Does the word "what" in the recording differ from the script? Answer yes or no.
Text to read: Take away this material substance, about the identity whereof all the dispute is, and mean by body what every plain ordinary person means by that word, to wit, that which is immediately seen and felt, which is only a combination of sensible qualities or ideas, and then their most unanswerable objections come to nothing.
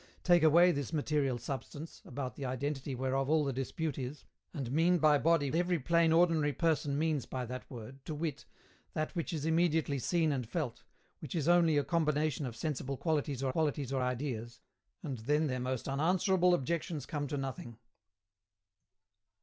yes